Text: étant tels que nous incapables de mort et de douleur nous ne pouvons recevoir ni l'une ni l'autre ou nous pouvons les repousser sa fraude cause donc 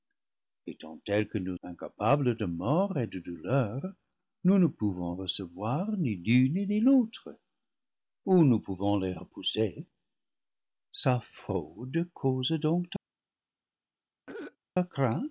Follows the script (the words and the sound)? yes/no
no